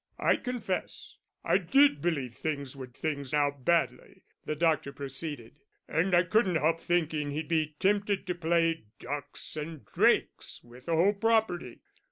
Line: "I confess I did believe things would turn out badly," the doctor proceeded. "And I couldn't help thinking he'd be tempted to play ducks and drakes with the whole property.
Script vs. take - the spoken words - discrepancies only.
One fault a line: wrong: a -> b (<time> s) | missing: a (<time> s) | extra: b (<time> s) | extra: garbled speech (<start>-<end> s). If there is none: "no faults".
wrong: turn -> things (2.9 s)